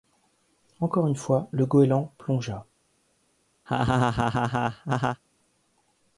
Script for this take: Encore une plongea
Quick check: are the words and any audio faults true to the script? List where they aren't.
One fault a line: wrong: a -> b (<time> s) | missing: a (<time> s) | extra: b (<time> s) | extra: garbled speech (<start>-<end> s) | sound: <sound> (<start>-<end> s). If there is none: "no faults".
extra: fois le goéland (1.1 s)
sound: laugh (3.7-5.2 s)